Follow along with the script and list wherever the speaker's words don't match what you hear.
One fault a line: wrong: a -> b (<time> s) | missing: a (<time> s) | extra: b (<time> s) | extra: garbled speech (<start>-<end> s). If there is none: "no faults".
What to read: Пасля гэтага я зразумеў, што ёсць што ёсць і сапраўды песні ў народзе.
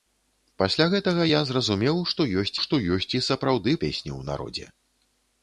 no faults